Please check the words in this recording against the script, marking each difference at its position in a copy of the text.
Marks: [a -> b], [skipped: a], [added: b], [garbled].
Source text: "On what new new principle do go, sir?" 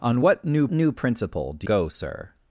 "On what new new principle do go, sir?"